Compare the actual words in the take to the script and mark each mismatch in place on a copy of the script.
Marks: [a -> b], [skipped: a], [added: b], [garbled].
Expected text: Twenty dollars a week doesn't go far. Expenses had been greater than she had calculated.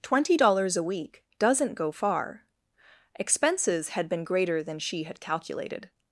Twenty dollars a week doesn't go far. Expenses had been greater than she had calculated.